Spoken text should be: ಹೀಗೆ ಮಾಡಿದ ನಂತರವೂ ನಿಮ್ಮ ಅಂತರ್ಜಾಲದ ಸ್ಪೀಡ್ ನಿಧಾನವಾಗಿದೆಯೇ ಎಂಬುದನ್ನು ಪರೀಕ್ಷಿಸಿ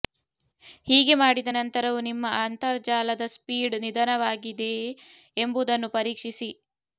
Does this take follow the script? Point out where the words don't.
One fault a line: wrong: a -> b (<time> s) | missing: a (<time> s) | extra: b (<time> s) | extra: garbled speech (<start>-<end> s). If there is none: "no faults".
no faults